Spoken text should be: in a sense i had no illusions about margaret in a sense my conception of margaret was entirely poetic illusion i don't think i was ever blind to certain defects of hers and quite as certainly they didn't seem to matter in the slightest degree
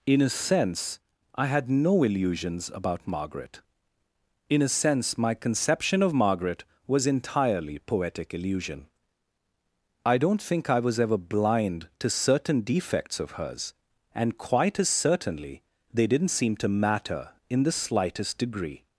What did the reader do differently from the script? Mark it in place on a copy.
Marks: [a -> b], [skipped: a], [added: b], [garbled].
in a sense i had no illusions about margaret in a sense my conception of margaret was entirely poetic illusion i don't think i was ever blind to certain defects of hers and quite as certainly they didn't seem to matter in the slightest degree